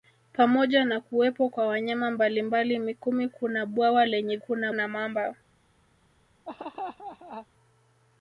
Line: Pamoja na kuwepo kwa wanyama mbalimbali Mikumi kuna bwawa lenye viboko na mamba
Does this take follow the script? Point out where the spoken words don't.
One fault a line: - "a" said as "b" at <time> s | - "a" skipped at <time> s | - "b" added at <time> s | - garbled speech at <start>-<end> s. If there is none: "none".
- "viboko" said as "kuna" at 4.4 s